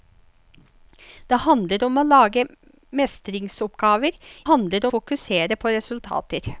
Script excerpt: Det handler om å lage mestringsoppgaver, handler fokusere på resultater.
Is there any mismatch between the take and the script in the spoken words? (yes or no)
no